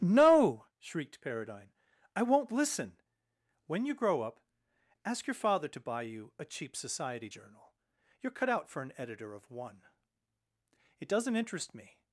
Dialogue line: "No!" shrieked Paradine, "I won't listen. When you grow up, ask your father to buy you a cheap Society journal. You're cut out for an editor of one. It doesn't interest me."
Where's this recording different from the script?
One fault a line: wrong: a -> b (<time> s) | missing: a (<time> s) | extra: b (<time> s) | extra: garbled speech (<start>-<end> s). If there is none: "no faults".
no faults